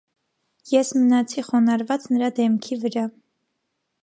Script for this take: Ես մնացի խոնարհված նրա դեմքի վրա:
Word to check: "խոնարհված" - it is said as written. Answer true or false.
true